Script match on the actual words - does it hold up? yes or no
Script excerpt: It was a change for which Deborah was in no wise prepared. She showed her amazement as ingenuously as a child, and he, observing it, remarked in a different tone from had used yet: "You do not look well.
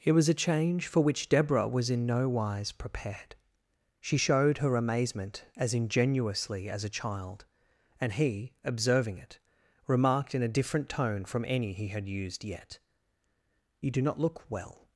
no